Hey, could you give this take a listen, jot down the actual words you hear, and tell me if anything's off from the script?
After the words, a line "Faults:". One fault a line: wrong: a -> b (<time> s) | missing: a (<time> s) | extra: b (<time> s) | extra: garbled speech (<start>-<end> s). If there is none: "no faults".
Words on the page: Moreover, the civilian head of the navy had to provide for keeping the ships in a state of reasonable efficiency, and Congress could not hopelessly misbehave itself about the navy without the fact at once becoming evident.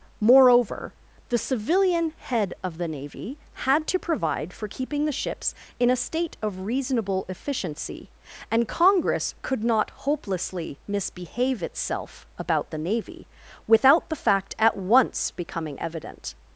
Moreover, the civilian head of the navy had to provide for keeping the ships in a state of reasonable efficiency, and Congress could not hopelessly misbehave itself about the navy without the fact at once becoming evident.
Faults:
no faults